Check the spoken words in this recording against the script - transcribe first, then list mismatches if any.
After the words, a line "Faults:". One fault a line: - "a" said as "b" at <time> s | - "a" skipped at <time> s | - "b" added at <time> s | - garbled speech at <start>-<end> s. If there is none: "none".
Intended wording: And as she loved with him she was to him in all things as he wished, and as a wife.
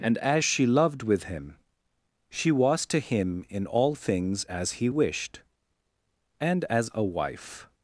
And as she loved with him she was to him in all things as he wished, and as a wife.
Faults:
none